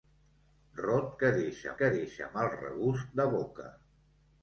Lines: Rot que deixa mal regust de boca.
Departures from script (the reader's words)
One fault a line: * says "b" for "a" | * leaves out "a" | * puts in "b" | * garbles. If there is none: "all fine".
* puts in "que deixa"